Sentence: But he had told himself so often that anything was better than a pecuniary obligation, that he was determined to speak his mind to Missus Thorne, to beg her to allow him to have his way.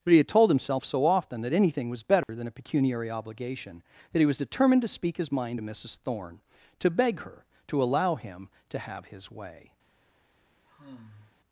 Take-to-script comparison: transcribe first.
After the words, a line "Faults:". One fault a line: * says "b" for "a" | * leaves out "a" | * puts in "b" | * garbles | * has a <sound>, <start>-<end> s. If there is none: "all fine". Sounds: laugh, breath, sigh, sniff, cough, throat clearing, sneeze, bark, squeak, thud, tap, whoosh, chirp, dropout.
But he had told himself so often that anything was better than a pecuniary obligation, that he was determined to speak his mind to Missus Thorne, to beg her to allow him to have his way.
Faults:
* has a dropout, 2.2-2.3 s
* has a sigh, 10.7-11.4 s